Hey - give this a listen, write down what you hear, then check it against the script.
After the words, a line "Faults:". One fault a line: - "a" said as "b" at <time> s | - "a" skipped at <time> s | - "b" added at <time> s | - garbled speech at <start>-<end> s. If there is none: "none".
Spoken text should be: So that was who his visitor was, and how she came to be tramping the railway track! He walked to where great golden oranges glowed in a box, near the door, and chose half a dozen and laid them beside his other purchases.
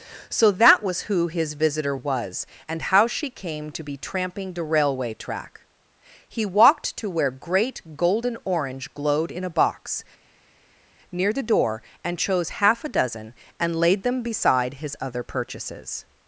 So that was who his visitor was, and how she came to be tramping the railway track! He walked to where great golden orange glowed in a box, near the door, and chose half a dozen and laid them beside his other purchases.
Faults:
- "oranges" said as "orange" at 8.4 s